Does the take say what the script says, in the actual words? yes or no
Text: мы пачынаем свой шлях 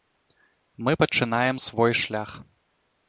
yes